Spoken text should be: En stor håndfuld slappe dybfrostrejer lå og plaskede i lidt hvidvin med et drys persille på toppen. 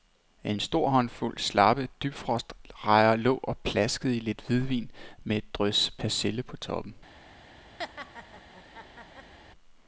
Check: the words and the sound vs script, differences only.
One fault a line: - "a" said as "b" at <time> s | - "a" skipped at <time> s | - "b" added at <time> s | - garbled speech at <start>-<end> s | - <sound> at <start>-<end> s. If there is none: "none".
- laugh at 7.8-9.3 s